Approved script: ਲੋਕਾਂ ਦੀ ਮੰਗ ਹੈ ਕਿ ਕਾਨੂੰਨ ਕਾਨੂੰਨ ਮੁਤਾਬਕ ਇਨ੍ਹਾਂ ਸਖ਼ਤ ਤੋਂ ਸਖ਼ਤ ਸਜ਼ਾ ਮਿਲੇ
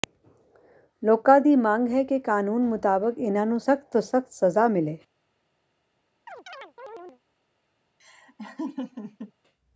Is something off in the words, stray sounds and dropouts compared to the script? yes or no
yes